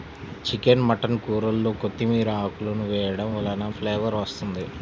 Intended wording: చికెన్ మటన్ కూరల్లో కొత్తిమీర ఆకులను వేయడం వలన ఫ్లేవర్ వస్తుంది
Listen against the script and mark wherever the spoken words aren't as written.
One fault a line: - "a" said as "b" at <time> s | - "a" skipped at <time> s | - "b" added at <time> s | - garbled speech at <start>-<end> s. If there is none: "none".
none